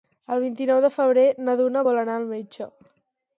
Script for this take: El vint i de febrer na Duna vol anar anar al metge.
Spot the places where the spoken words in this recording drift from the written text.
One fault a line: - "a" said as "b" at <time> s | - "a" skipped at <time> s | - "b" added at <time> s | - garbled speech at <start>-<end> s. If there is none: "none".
- "nou" added at 0.7 s
- "anar" skipped at 2.2 s